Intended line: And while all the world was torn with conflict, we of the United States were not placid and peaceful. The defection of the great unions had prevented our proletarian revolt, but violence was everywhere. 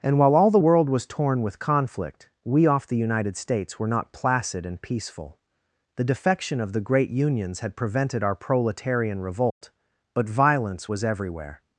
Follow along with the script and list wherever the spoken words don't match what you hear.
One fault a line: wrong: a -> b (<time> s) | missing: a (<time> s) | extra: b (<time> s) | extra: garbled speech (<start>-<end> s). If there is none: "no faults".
wrong: of -> off (2.7 s)